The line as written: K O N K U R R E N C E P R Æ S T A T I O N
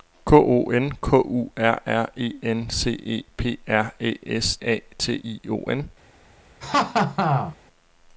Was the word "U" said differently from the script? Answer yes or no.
no